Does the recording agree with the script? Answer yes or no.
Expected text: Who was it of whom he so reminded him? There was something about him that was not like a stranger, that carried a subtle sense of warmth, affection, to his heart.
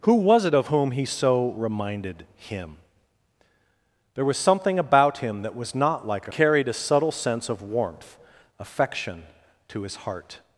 no